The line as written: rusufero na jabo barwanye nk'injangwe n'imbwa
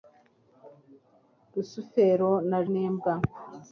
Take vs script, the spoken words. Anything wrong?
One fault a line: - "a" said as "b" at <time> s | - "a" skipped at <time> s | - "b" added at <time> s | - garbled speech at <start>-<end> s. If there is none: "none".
- "jabo barwanye nk'injangwe" skipped at 2.6 s